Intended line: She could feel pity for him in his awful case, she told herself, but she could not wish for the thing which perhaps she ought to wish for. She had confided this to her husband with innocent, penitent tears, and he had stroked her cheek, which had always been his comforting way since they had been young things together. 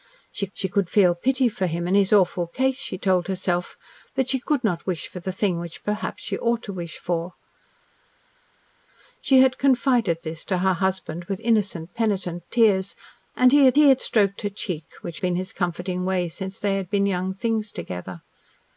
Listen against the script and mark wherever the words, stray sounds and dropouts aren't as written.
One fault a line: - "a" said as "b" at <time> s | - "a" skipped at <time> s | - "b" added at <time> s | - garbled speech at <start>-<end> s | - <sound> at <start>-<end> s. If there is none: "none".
- "she" added at 0.5 s
- "he had" added at 13.8 s
- "had always" skipped at 15.2 s